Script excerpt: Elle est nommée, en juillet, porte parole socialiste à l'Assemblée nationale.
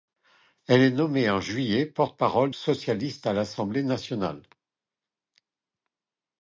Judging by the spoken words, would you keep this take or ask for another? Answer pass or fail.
pass